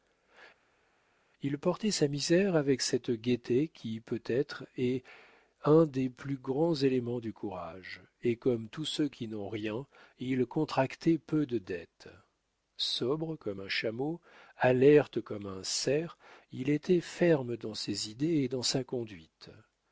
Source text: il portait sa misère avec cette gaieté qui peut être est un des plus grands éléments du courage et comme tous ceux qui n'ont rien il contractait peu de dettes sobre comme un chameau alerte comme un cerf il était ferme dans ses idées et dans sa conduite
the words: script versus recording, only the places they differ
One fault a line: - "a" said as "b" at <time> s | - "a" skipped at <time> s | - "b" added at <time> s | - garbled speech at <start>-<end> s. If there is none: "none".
none